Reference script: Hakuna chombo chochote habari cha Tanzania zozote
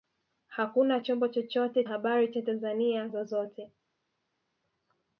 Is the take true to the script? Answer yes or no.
yes